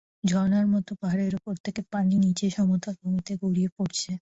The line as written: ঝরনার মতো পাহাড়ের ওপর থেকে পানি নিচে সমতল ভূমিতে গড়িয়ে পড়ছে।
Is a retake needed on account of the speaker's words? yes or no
no